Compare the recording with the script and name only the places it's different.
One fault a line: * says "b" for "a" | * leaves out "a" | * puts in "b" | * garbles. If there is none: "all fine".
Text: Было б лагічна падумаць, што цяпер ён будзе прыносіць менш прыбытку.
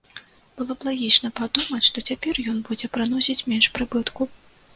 all fine